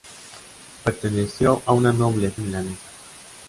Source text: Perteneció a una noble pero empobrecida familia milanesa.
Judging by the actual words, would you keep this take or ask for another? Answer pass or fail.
fail